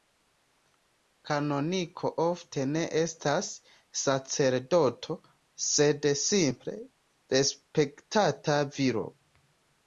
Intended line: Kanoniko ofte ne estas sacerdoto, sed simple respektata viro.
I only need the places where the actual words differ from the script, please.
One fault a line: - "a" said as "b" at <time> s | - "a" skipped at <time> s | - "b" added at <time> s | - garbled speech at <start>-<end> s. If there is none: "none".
none